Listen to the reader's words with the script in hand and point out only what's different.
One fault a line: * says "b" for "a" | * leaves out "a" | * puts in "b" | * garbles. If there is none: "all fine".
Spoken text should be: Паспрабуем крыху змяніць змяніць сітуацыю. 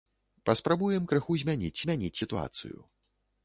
all fine